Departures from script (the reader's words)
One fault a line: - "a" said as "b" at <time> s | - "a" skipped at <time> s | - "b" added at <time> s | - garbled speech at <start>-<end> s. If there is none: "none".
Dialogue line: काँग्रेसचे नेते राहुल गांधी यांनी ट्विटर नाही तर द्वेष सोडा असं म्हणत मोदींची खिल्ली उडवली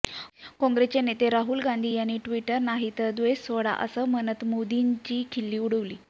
none